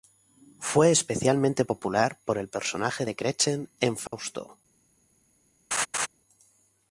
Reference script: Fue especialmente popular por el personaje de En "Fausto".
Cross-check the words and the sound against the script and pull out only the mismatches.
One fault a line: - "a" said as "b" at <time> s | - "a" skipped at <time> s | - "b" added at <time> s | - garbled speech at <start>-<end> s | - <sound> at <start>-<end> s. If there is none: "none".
- "Gretchen" added at 3.1 s
- dropout at 4.1-4.1 s
- laugh at 5.7-6.1 s